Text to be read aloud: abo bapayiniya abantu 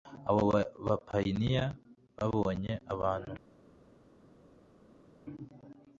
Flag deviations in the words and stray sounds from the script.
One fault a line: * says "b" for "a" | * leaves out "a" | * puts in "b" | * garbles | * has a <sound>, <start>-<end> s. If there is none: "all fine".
* puts in "babonye"